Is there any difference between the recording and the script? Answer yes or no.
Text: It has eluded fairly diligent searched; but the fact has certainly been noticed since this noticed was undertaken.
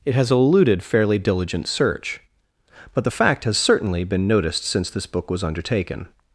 yes